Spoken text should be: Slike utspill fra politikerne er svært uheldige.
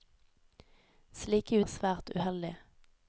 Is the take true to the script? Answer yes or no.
no